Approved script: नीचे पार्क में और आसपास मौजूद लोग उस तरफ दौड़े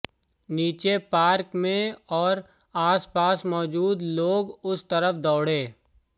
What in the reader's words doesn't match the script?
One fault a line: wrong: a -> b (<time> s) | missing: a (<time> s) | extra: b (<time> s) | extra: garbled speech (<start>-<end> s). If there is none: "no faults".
no faults